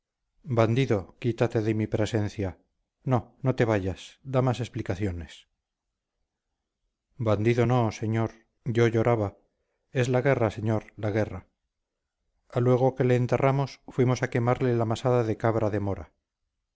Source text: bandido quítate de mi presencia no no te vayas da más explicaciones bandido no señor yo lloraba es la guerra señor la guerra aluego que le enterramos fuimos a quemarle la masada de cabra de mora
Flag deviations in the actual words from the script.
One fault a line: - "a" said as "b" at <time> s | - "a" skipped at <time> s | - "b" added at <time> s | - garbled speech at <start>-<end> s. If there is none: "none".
none